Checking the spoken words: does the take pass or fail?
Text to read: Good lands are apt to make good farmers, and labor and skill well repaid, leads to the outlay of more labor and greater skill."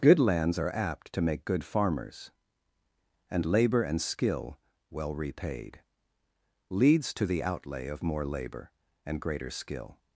pass